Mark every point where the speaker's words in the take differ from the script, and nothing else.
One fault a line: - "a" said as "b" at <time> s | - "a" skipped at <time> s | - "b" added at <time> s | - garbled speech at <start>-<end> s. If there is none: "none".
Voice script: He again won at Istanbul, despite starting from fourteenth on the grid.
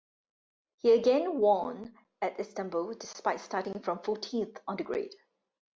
none